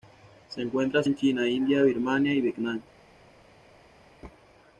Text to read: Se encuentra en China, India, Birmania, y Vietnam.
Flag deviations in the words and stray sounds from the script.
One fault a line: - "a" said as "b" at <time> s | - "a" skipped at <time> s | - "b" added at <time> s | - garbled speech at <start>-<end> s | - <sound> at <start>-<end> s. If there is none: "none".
none